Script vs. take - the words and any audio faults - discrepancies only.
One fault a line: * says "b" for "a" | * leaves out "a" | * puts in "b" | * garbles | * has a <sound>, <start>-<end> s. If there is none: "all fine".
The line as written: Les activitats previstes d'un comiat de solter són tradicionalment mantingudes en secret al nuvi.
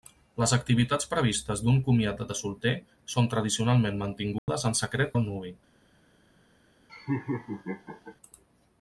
* has a dropout, 4.4-4.5 s
* has a laugh, 6.9-8.2 s